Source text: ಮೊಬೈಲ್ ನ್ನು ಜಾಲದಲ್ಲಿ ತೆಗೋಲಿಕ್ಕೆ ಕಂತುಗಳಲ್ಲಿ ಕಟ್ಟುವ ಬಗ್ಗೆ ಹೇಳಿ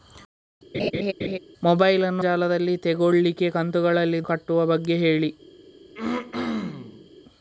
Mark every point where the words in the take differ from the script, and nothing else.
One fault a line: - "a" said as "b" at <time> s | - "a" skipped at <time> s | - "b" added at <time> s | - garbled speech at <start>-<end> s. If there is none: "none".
none